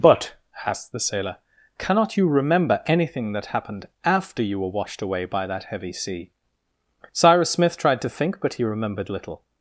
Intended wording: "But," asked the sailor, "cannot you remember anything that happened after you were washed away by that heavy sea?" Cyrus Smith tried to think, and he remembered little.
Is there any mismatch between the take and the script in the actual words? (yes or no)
yes